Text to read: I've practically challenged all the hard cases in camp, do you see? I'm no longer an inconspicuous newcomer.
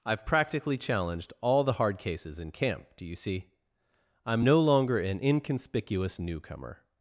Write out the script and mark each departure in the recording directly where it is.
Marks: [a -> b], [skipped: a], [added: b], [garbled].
I've practically challenged all the hard cases in camp, do you see? I'm no longer an inconspicuous newcomer.